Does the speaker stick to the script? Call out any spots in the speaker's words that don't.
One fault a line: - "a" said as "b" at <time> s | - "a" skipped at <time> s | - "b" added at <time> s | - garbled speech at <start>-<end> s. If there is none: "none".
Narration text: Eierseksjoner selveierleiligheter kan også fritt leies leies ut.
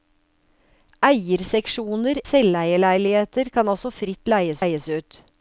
none